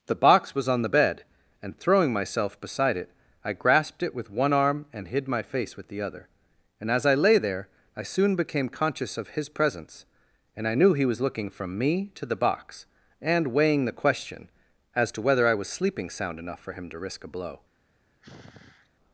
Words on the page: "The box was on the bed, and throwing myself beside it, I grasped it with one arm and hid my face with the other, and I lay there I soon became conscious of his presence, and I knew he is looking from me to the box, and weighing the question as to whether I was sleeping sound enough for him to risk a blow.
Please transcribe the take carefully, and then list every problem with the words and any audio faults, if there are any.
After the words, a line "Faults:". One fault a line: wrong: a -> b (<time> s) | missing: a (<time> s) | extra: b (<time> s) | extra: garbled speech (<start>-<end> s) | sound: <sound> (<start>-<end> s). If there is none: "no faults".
"The box was on the bed, and throwing myself beside it, I grasped it with one arm and hid my face with the other, and as I lay there I soon became conscious of his presence, and I knew he was looking from me to the box, and weighing the question as to whether I was sleeping sound enough for him to risk a blow.
Faults:
extra: as (6.9 s)
wrong: is -> was (11.1 s)
sound: sigh (18.2-18.9 s)